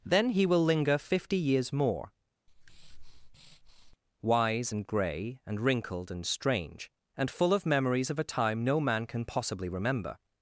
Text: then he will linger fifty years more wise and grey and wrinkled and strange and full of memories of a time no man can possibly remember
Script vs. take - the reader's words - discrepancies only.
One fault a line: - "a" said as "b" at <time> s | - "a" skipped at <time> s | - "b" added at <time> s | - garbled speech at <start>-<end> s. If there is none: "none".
none